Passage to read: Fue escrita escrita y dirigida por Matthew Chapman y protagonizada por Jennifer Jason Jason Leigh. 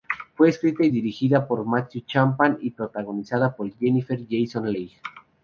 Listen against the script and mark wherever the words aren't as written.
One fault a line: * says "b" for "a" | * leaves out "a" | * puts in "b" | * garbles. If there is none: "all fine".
* leaves out "escrita"
* leaves out "Jason"